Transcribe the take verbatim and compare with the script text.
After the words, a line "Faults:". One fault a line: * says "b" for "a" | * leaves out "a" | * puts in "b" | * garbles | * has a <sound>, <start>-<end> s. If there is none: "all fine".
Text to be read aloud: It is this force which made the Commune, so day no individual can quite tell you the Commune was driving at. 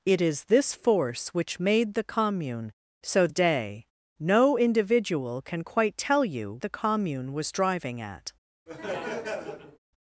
It is this force which made the Commune, so day no individual can quite tell you the Commune was driving at.
Faults:
* has a laugh, 8.7-9.8 s